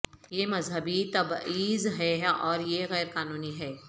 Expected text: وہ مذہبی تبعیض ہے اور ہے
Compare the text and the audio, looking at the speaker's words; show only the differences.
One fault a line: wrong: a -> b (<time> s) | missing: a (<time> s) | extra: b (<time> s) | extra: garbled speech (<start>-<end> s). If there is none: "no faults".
wrong: وہ -> یہ (0.3 s)
extra: یہ غیر قانونی (2.6 s)